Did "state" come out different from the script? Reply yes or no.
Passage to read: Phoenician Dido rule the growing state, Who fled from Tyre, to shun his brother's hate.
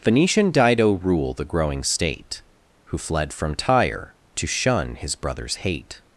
no